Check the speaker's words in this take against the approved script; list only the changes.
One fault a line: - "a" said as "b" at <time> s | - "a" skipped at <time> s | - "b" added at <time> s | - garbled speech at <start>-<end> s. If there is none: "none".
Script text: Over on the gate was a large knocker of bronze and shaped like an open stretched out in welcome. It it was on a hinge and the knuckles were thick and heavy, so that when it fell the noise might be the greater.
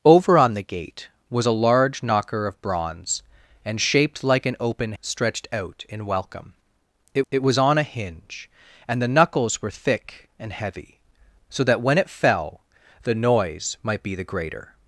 none